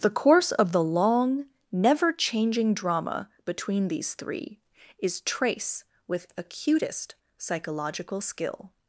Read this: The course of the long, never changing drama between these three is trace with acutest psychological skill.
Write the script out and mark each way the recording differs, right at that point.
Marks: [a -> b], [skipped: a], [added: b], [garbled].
The course of the long, never changing drama between these three is trace with acutest psychological skill.